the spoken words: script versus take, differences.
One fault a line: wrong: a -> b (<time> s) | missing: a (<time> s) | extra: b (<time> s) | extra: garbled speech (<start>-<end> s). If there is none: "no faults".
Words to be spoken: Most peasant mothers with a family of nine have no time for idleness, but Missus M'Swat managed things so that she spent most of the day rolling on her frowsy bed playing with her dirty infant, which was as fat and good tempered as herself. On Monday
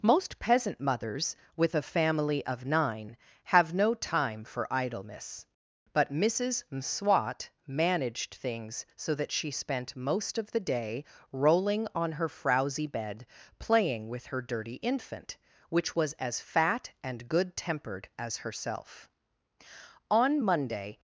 no faults